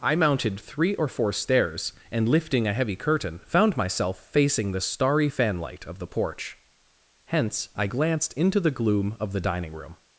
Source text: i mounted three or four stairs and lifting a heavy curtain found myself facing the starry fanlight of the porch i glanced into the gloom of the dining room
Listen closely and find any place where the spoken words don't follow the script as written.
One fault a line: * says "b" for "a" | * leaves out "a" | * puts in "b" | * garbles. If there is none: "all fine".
* puts in "hence"